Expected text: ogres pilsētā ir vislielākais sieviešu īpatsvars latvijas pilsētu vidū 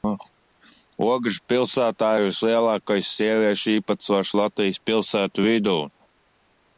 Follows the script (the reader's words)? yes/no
yes